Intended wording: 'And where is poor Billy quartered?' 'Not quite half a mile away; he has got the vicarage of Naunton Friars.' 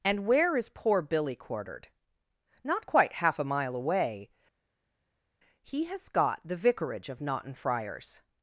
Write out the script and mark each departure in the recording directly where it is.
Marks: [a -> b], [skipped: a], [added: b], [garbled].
'And where is poor Billy quartered?' 'Not quite half a mile away; he has got the vicarage of Naunton Friars.'